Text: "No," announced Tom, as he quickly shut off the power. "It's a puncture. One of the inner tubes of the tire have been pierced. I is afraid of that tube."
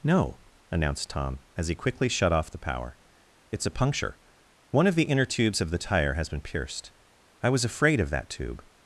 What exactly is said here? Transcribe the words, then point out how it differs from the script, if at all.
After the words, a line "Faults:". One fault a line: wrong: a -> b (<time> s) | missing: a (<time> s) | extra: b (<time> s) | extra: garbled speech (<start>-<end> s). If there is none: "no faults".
"No," announced Tom, as he quickly shut off the power. "It's a puncture. One of the inner tubes of the tire has been pierced. I was afraid of that tube."
Faults:
wrong: have -> has (6.1 s)
wrong: is -> was (7.5 s)